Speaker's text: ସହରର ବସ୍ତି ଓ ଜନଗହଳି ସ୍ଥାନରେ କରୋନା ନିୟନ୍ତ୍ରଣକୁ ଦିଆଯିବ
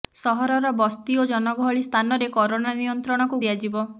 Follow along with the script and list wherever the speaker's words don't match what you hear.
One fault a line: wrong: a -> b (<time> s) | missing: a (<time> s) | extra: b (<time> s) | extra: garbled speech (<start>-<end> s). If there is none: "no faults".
no faults